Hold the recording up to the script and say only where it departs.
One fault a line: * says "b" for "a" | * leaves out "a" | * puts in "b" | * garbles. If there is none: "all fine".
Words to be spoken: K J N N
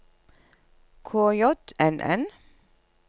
all fine